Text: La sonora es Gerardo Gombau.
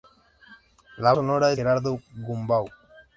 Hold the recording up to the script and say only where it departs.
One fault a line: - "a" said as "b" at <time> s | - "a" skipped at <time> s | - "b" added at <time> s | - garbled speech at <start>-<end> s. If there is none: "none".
none